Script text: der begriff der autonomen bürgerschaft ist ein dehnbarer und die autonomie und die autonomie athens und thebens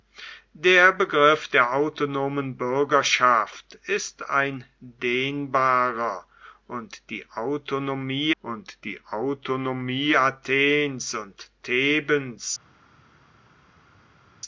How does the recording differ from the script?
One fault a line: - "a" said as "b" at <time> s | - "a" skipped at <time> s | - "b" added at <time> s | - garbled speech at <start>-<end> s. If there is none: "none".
none